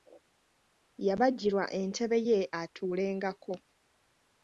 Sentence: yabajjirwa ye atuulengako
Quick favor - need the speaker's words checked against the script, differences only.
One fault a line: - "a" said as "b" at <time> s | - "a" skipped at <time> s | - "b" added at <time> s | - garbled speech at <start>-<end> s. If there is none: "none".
- "entebe" added at 1.8 s